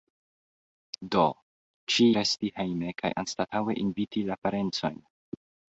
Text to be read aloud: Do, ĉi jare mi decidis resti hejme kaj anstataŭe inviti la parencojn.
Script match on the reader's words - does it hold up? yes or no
no